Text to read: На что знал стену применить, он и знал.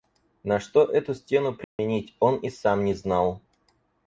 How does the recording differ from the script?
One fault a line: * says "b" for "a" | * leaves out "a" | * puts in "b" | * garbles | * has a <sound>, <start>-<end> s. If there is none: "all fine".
* says "эту" for "знал"
* has a dropout, 1.6-1.8 s
* puts in "сам не"